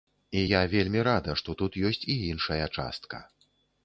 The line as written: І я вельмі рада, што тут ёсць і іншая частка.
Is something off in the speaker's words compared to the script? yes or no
no